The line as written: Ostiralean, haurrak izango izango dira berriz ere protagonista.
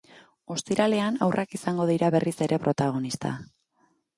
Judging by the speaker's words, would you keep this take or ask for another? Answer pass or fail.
fail